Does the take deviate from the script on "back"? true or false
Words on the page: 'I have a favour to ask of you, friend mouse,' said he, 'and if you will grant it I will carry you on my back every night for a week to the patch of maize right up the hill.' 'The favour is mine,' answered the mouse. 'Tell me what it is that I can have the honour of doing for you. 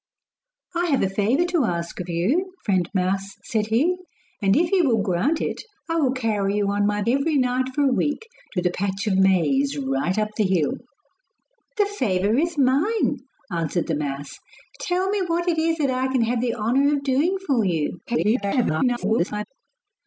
true